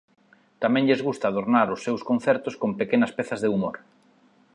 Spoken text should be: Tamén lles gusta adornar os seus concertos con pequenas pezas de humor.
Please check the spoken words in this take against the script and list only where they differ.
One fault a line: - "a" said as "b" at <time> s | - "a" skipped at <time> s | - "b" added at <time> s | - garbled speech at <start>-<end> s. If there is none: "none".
none